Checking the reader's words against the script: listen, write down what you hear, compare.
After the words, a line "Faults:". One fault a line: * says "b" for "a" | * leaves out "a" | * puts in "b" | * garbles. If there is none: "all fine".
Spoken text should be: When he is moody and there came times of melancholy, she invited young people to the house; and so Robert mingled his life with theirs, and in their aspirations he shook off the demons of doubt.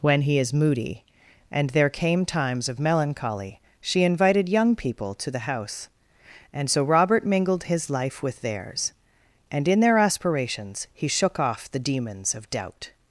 When he is moody and there came times of melancholy, she invited young people to the house; and so Robert mingled his life with theirs, and in their aspirations he shook off the demons of doubt.
Faults:
all fine